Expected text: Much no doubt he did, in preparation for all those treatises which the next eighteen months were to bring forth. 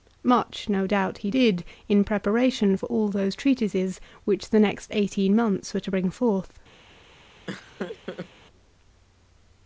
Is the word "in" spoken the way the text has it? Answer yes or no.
yes